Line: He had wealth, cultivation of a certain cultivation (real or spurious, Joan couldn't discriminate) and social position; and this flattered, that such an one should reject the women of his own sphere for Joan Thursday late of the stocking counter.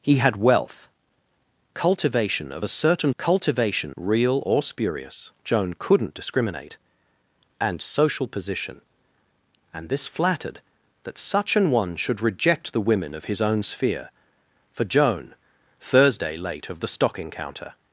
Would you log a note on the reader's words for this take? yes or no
no